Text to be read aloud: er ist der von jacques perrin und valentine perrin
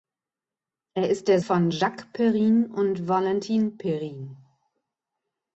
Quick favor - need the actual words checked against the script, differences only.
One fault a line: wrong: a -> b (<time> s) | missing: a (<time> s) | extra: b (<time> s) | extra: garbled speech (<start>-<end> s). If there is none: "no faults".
no faults